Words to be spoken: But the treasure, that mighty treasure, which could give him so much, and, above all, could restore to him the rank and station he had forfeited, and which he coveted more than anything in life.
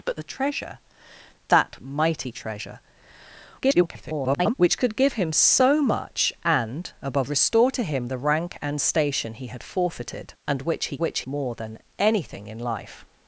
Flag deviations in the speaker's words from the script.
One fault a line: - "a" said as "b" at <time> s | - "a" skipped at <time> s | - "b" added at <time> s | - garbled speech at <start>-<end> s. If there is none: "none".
- garbled speech at 3.6-4.5 s
- "all could" skipped at 7.3 s
- "coveted" said as "which" at 11.0 s